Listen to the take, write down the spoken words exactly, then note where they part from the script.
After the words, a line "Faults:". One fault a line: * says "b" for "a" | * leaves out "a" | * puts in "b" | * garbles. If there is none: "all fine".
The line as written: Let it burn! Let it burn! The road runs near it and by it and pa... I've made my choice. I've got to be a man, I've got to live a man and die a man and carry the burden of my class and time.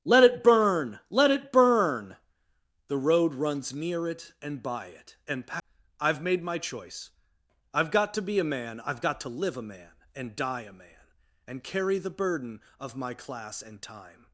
Let it burn! Let it burn! The road runs near it and by it and pa... I've made my choice. I've got to be a man, I've got to live a man and die a man and carry the burden of my class and time.
Faults:
all fine